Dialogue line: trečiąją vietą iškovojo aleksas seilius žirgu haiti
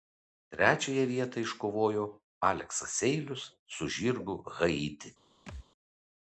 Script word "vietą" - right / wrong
right